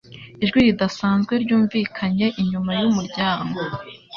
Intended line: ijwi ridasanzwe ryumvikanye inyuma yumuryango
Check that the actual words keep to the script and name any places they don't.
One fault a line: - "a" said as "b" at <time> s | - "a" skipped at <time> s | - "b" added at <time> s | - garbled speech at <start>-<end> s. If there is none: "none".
none